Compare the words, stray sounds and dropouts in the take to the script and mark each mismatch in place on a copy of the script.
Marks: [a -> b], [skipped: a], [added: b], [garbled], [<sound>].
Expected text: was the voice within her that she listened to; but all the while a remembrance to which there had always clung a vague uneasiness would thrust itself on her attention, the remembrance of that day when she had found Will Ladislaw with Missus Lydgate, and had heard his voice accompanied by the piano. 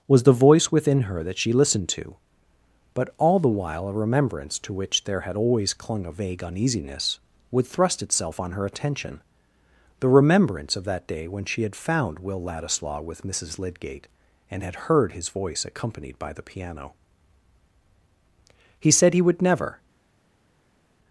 was the voice within her that she listened to; but all the while a remembrance to which there had always clung a vague uneasiness would thrust itself on her attention, the remembrance of that day when she had found Will Ladislaw with Missus Lydgate, and had heard his voice accompanied by the piano. [added: He said he would never]